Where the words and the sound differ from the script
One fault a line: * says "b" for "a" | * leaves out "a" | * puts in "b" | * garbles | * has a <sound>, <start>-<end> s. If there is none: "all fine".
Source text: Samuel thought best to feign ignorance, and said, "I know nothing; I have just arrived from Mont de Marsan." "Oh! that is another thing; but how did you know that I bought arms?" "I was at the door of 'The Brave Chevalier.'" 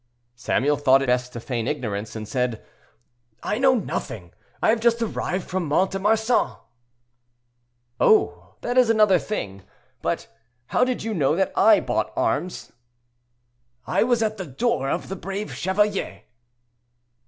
all fine